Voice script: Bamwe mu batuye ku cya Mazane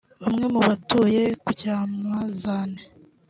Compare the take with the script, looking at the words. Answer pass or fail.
pass